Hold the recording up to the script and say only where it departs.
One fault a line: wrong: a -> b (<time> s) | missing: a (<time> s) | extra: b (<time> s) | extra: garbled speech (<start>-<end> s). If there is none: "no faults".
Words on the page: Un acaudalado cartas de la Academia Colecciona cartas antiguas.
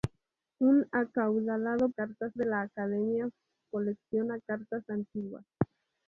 no faults